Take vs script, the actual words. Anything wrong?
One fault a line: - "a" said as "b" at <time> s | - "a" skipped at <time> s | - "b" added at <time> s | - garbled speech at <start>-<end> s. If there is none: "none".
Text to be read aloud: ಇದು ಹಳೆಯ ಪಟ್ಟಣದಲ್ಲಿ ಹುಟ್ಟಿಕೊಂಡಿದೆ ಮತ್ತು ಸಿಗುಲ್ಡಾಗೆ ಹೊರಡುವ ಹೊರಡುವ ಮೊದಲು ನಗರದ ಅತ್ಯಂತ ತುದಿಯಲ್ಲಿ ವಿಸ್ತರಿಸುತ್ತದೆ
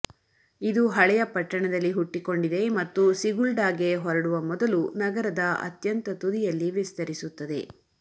- "ಹೊರಡುವ" skipped at 4.4 s